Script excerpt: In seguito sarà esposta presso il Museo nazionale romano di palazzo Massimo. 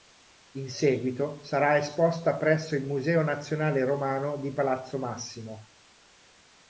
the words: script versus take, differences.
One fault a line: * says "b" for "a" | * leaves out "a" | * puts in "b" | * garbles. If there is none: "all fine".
all fine